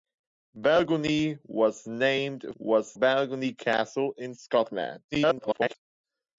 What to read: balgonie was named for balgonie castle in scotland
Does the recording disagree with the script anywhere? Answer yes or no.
yes